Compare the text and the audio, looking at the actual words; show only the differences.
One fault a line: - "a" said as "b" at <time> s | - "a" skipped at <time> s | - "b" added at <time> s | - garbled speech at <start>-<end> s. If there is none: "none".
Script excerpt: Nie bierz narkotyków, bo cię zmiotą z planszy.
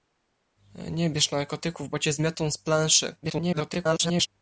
- garbled speech at 3.2-4.3 s